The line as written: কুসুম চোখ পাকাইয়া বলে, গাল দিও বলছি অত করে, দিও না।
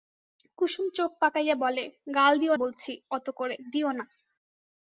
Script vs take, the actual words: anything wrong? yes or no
no